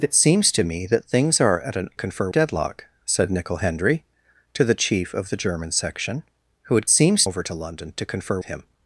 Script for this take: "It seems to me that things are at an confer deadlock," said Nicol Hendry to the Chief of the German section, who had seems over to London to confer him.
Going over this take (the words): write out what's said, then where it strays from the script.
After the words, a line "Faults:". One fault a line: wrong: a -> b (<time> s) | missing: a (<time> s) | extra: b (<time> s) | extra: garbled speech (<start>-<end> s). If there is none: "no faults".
"It seems to me that things are at an confer deadlock," said Nicol Hendry to the Chief of the German section, who had seems over to London to confer him.
Faults:
no faults